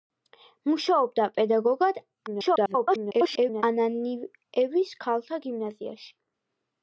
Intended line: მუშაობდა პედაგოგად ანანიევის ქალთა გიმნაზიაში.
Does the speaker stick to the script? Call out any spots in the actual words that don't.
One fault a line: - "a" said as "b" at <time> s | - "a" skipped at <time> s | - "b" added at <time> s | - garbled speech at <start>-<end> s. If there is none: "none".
- garbled speech at 2.3-3.6 s